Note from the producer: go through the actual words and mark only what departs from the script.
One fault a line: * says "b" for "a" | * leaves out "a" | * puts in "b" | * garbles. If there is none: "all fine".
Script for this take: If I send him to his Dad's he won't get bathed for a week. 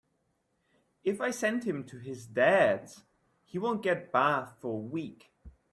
all fine